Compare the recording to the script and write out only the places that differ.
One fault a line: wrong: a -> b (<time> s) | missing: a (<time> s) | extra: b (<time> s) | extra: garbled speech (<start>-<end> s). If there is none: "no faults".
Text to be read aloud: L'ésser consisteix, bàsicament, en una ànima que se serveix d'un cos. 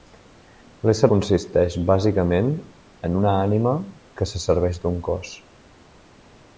no faults